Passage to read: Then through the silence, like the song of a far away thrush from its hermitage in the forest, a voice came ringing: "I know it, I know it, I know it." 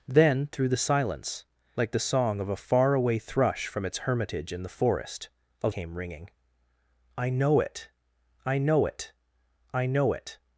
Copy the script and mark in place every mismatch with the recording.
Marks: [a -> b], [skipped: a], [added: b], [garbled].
Then through the silence, like the song of a far away thrush from its hermitage in the forest, a [skipped: voice] came ringing: "I know it, I know it, I know it."